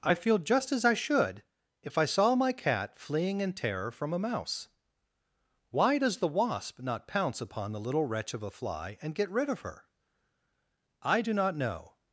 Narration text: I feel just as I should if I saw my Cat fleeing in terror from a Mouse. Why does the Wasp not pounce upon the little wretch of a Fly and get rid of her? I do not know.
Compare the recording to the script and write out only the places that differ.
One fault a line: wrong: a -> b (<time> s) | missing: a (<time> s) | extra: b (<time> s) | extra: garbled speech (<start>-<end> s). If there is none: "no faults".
no faults